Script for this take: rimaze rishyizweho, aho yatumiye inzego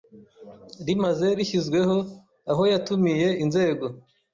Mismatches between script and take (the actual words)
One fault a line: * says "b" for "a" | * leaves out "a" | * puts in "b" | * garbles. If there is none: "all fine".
all fine